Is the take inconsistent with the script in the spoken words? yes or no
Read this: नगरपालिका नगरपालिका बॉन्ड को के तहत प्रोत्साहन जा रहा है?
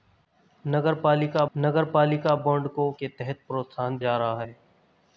no